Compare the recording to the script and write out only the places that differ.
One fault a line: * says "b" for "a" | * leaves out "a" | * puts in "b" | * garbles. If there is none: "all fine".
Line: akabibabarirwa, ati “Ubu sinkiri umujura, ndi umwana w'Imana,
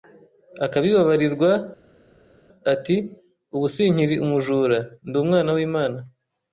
all fine